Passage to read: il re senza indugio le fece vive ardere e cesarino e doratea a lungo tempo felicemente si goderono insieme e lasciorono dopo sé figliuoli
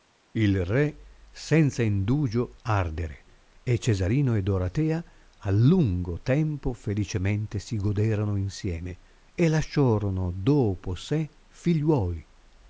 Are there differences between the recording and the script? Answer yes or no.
yes